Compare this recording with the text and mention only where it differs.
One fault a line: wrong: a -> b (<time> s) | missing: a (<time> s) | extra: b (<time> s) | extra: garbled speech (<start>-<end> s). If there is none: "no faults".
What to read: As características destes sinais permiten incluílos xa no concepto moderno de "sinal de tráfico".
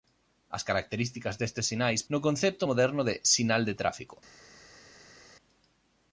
missing: permiten incluílos xa (2.0 s)